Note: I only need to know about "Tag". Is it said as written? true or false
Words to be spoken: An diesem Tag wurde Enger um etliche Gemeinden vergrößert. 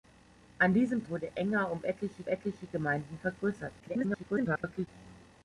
false